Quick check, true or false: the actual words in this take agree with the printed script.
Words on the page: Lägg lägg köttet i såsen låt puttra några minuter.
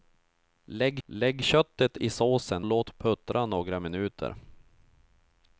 true